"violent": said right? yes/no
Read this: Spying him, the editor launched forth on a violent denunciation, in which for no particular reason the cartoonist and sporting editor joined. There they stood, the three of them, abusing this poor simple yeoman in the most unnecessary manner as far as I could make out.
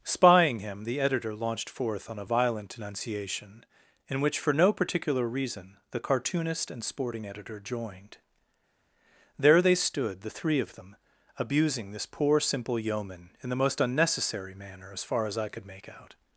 yes